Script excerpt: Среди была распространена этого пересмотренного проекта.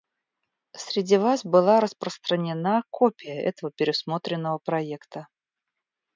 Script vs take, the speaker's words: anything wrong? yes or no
yes